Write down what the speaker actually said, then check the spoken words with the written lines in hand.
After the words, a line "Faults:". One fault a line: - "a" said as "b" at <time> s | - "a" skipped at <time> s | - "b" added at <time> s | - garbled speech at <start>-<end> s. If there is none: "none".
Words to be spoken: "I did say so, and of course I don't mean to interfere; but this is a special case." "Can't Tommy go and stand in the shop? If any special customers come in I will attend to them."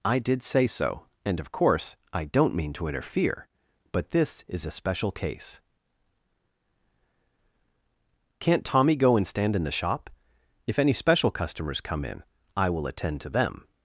"I did say so, and of course I don't mean to interfere; but this is a special case." "Can't Tommy go and stand in the shop? If any special customers come in I will attend to them."
Faults:
none